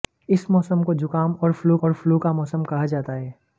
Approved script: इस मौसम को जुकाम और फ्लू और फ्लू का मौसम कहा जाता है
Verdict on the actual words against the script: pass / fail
pass